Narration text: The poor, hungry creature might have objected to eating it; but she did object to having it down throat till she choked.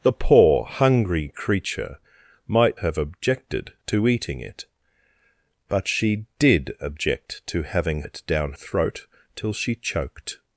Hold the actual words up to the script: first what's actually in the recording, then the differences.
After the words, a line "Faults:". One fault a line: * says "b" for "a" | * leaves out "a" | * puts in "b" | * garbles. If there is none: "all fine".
The poor, hungry creature might have objected to eating it; but she did object to having it down throat till she choked.
Faults:
all fine